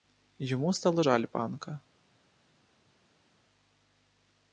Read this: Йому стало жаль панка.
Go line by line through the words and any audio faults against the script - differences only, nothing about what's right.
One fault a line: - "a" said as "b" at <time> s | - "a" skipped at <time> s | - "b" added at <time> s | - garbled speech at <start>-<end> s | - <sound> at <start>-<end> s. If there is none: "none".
none